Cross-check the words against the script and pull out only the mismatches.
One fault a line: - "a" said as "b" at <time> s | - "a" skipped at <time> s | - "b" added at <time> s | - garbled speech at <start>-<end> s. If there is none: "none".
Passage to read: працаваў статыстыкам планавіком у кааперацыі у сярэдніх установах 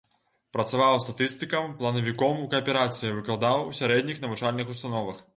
- "выкладаў" added at 3.2 s
- "навучальных" added at 4.3 s